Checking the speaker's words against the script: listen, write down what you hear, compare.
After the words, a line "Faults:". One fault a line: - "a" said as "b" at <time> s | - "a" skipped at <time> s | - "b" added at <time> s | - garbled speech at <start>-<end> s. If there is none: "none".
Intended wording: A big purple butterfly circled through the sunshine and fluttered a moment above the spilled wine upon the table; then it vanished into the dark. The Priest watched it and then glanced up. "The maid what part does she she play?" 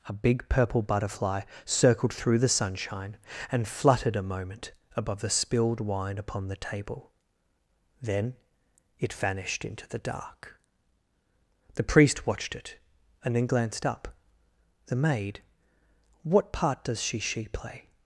A big purple butterfly circled through the sunshine and fluttered a moment above the spilled wine upon the table; then it vanished into the dark. The Priest watched it and then glanced up. "The maid what part does she she play?"
Faults:
none